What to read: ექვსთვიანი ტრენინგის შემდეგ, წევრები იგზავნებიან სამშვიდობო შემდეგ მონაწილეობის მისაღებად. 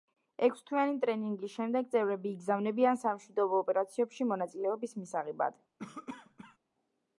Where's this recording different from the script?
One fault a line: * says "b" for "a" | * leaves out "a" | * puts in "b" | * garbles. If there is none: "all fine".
* says "ოპერაციებში" for "შემდეგ"